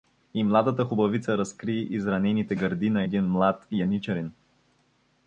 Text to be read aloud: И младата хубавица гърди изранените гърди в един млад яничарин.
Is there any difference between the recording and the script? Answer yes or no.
yes